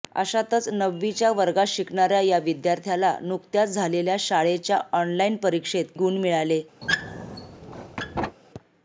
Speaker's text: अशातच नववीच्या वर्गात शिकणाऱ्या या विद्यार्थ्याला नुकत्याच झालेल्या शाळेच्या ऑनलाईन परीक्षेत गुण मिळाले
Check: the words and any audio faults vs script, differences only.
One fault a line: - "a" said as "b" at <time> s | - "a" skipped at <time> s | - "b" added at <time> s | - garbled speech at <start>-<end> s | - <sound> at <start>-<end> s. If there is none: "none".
- squeak at 6.8-8.4 s